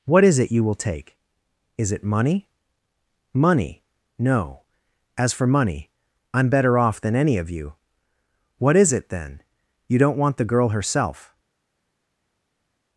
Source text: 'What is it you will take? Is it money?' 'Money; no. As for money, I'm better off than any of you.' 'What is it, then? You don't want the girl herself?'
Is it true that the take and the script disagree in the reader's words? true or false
false